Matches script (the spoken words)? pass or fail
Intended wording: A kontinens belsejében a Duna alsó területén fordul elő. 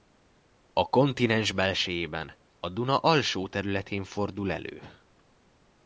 pass